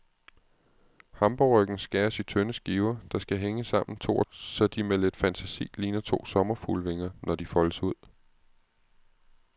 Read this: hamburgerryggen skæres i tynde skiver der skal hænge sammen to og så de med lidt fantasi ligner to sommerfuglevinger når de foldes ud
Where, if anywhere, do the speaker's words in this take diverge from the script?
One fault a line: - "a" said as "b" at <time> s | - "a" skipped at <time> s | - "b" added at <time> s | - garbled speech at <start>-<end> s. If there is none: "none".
none